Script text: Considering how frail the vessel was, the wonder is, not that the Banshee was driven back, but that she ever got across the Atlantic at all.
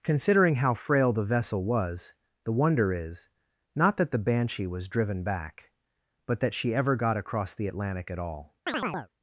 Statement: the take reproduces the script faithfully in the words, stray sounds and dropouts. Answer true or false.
false